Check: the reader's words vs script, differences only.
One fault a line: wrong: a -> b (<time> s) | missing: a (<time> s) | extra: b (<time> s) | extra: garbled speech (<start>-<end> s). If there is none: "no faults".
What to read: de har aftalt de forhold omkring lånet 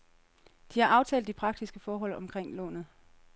extra: praktiske (1.3 s)